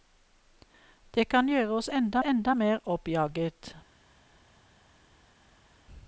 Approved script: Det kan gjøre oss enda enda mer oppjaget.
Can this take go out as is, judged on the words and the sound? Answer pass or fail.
pass